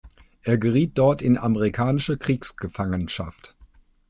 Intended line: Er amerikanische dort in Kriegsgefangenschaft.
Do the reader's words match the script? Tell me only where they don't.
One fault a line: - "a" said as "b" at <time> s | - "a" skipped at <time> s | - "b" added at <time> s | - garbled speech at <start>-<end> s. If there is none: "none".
- "amerikanische" said as "geriet" at 0.6 s
- "amerikanische" added at 1.4 s